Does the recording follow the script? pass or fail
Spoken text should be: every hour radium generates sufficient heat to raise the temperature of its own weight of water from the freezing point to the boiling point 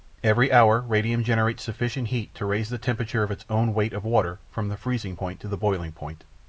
pass